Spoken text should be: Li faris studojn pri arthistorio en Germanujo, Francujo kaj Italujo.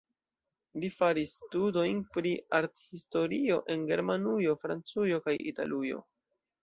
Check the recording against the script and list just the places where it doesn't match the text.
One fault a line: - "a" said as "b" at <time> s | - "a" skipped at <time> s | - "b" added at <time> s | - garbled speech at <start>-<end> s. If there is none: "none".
none